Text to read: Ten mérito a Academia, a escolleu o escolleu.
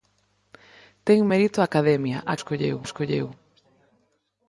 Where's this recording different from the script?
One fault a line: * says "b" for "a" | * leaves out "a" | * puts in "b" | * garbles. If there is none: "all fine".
all fine